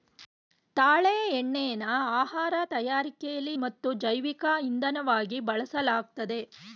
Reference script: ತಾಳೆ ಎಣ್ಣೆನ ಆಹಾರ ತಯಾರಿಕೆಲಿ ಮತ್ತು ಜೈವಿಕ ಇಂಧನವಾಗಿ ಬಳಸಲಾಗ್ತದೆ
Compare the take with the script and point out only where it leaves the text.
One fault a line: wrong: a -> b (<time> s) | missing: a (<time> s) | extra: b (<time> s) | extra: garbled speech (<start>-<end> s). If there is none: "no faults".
no faults